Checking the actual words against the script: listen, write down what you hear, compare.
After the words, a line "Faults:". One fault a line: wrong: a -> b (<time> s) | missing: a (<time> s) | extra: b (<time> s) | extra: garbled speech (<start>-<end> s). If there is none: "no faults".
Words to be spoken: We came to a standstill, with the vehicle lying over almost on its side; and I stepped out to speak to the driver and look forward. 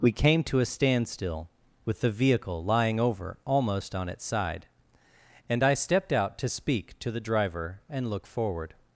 We came to a standstill, with the vehicle lying over almost on its side; and I stepped out to speak to the driver and look forward.
Faults:
no faults